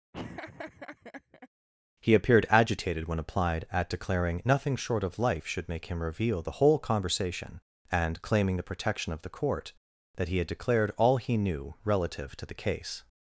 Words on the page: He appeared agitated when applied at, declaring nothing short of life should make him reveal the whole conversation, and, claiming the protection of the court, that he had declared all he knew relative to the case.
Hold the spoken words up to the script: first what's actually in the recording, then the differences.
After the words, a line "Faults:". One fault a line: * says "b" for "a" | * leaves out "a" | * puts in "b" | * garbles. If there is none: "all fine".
He appeared agitated when applied at, declaring nothing short of life should make him reveal the whole conversation, and, claiming the protection of the court, that he had declared all he knew relative to the case.
Faults:
all fine